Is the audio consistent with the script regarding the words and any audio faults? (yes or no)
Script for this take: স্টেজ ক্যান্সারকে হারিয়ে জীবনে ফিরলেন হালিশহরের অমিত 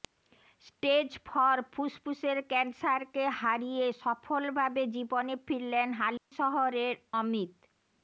no